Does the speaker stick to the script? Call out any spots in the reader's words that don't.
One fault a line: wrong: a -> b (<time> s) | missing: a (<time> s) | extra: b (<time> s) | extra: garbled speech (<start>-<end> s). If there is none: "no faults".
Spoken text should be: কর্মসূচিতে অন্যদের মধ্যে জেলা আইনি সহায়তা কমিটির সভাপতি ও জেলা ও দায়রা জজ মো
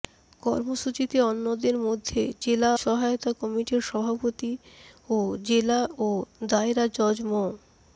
missing: আইনি (2.7 s)